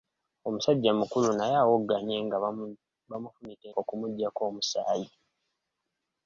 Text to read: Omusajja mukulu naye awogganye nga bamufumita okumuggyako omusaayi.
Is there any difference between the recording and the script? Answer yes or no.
no